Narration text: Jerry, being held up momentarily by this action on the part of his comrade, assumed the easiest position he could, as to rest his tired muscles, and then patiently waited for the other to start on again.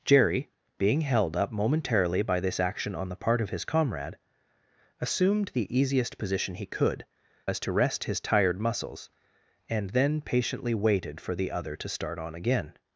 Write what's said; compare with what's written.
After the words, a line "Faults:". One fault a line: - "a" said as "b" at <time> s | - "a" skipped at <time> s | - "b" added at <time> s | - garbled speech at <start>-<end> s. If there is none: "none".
Jerry, being held up momentarily by this action on the part of his comrade, assumed the easiest position he could, as to rest his tired muscles, and then patiently waited for the other to start on again.
Faults:
none